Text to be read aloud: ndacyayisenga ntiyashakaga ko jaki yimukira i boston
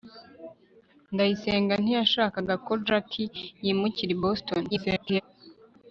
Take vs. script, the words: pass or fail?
fail